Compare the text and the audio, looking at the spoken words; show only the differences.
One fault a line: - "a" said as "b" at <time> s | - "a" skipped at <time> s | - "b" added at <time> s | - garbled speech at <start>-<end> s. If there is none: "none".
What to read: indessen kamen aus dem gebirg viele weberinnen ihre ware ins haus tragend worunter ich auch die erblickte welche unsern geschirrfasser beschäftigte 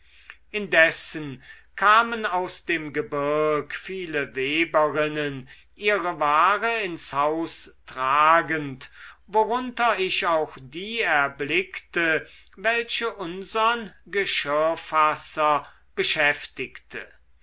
none